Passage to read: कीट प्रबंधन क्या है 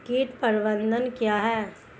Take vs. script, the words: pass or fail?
pass